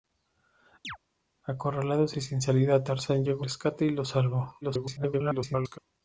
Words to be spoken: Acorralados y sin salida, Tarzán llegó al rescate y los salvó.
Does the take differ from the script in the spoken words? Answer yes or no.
yes